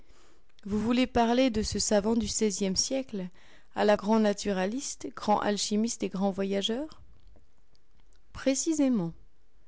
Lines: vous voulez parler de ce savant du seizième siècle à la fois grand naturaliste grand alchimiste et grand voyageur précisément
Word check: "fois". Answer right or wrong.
wrong